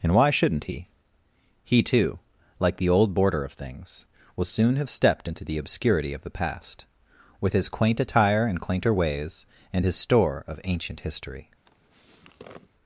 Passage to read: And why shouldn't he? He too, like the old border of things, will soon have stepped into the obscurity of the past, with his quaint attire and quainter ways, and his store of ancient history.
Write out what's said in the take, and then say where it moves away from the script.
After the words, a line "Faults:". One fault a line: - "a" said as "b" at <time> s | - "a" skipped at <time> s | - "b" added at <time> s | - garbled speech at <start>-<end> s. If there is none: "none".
And why shouldn't he? He too, like the old border of things, will soon have stepped into the obscurity of the past, with his quaint attire and quainter ways, and his store of ancient history.
Faults:
none